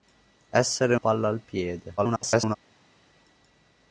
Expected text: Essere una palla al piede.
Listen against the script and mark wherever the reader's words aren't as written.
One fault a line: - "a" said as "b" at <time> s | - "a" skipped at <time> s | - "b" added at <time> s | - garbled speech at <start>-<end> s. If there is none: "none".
- "una" skipped at 0.9 s
- garbled speech at 2.0-2.6 s